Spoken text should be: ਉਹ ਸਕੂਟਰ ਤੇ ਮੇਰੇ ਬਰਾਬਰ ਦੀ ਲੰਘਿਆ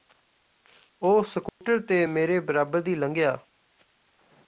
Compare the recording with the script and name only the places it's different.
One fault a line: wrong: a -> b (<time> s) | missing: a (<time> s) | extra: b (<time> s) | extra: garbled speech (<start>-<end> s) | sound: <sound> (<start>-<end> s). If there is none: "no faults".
sound: dropout (1.5-1.6 s)